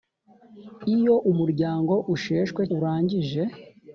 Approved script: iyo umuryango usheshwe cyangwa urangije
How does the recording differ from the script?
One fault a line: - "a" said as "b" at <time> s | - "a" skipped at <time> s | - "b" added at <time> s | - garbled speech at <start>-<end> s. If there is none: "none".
- "cyangwa" skipped at 2.6 s